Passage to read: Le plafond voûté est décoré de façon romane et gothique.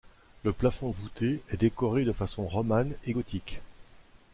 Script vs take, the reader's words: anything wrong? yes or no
no